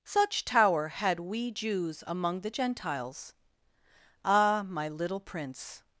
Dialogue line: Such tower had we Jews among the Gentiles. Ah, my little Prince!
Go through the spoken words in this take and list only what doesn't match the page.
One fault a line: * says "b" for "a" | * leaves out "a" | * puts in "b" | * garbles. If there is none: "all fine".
all fine